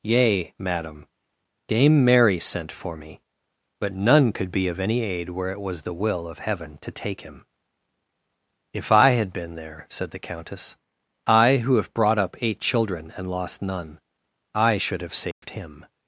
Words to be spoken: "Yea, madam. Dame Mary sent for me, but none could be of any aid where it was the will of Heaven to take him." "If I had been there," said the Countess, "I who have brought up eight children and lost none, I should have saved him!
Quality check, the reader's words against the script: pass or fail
pass